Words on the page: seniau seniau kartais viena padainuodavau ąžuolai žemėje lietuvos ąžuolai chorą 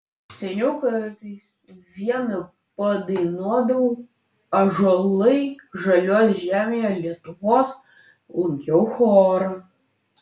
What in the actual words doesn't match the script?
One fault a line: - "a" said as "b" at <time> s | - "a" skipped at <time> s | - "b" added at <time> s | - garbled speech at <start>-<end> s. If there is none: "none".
- "seniau" skipped at 0.7 s
- "žaliuos" added at 5.8 s
- "ąžuolai" said as "lankiau" at 8.4 s